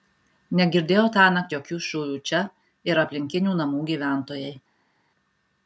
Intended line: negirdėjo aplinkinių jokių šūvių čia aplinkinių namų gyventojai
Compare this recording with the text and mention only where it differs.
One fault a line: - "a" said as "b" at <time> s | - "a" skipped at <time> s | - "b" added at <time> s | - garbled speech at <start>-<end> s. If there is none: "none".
- "aplinkinių" said as "tąnakt" at 1.2 s
- "ir" added at 2.9 s